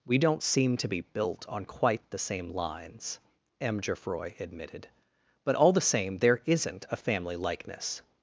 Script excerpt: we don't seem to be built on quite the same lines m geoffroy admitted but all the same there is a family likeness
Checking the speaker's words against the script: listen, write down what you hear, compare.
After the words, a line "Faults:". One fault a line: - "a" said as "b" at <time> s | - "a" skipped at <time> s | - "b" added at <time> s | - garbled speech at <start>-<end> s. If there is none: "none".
we don't seem to be built on quite the same lines m geoffroy admitted but all the same there isn't a family likeness
Faults:
- "is" said as "isn't" at 6.5 s